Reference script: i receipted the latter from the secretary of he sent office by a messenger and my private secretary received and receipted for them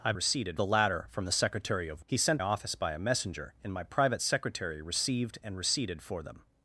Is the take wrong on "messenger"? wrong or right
right